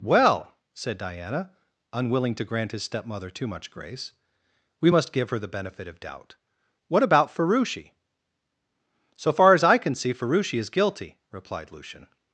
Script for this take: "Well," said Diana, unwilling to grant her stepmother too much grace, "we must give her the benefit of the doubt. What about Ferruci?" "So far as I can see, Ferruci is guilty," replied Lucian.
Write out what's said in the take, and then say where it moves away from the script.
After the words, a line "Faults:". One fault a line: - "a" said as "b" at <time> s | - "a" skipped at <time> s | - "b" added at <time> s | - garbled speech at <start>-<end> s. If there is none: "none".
"Well," said Diana, unwilling to grant his stepmother too much grace, "we must give her the benefit of doubt. What about Ferruci?" "So far as I can see, Ferruci is guilty," replied Lucian.
Faults:
- "her" said as "his" at 2.7 s
- "the" skipped at 6.0 s